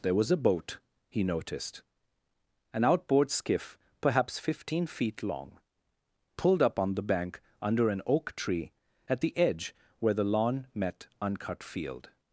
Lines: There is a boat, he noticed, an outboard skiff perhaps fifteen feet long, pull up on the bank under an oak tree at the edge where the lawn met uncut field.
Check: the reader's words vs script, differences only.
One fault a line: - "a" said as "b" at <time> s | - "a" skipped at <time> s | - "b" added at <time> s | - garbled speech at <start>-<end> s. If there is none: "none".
- "is" said as "was" at 0.1 s
- "pull" said as "pulled" at 6.4 s